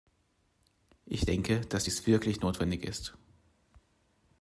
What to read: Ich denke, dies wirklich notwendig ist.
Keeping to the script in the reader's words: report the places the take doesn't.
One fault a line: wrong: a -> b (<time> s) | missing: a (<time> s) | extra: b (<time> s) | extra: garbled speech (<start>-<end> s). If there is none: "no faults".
extra: dass (1.6 s)